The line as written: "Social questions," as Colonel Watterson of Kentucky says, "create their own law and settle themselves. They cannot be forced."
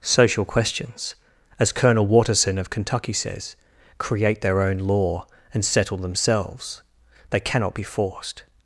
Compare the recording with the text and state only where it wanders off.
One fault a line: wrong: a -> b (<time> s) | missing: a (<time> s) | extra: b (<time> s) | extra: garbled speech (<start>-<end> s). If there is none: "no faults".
no faults